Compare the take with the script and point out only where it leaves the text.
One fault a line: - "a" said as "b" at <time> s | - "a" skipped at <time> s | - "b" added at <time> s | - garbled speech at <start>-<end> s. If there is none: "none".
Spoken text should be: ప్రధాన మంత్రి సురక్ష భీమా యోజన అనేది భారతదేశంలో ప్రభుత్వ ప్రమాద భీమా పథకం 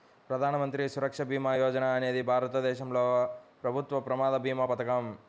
none